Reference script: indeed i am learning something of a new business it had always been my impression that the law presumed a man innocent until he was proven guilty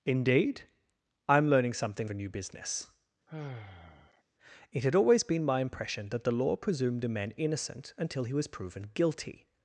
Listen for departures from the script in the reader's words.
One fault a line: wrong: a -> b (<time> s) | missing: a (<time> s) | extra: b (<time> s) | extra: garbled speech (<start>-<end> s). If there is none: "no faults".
missing: of (2.1 s)